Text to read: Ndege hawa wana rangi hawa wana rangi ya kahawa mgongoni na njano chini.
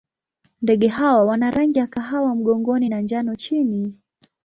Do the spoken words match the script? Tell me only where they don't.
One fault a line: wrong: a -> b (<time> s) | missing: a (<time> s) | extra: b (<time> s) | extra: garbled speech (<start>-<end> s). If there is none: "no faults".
missing: hawa wana rangi (1.8 s)